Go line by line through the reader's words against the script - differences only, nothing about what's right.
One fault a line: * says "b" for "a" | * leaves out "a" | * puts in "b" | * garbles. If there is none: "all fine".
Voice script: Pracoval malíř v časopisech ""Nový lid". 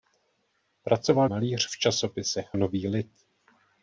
all fine